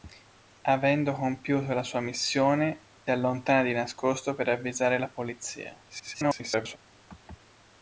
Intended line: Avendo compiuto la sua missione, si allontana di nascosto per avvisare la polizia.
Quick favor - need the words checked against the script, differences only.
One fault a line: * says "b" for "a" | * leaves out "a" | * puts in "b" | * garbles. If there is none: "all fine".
* leaves out "si"
* garbles